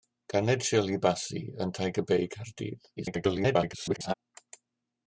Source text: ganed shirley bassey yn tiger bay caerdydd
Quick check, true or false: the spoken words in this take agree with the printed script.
false